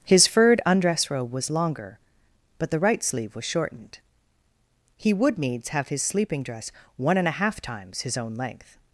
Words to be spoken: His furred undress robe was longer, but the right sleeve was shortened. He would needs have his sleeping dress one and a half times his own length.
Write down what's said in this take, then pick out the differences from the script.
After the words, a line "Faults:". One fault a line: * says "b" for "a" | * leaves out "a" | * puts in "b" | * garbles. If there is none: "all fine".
His furred undress robe was longer, but the right sleeve was shortened. He would needs have his sleeping dress one and a half times his own length.
Faults:
all fine